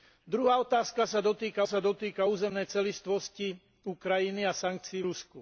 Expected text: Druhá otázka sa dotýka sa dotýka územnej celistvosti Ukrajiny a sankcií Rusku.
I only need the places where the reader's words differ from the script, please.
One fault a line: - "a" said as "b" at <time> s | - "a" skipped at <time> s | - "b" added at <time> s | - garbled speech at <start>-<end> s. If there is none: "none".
none